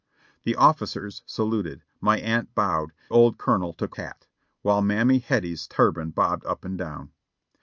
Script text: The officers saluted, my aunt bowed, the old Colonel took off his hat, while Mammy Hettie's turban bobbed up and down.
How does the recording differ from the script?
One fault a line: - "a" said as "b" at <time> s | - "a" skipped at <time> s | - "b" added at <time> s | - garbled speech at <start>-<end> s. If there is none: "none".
- "the" skipped at 2.9 s
- "off his" skipped at 4.0 s